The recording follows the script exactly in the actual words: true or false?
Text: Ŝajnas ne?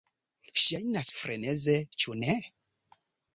false